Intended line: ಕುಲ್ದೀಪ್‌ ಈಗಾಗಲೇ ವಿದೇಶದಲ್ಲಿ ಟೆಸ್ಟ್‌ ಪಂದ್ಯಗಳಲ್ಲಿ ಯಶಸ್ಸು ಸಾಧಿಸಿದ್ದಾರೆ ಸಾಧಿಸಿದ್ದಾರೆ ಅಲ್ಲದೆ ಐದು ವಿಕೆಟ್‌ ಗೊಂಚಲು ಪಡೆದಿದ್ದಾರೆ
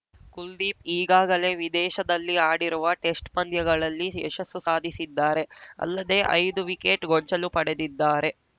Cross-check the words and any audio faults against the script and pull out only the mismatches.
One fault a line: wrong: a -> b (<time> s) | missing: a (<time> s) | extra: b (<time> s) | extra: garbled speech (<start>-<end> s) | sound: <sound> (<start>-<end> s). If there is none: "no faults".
extra: ಆಡಿರುವ (2.5 s)
missing: ಸಾಧಿಸಿದ್ದಾರೆ (5.4 s)